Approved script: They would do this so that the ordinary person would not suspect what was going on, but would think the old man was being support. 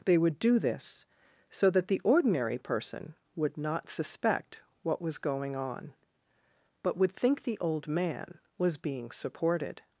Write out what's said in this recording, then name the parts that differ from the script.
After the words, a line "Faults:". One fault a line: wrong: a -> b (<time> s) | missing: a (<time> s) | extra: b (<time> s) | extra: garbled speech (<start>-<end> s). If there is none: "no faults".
They would do this so that the ordinary person would not suspect what was going on, but would think the old man was being supported.
Faults:
wrong: support -> supported (9.1 s)